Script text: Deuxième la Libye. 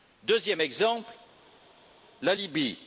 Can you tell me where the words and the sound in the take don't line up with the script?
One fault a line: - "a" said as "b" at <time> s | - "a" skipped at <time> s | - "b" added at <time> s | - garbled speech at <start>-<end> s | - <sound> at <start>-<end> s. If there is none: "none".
- "exemple" added at 0.6 s